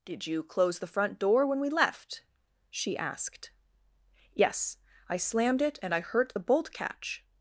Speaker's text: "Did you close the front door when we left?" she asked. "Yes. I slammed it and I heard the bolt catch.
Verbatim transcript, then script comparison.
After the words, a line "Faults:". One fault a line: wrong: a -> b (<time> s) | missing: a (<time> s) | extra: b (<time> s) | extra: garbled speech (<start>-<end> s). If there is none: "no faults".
"Did you close the front door when we left?" she asked. "Yes. I slammed it and I hurt the bolt catch.
Faults:
wrong: heard -> hurt (6.0 s)